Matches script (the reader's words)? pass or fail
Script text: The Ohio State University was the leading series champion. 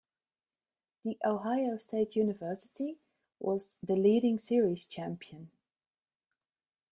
pass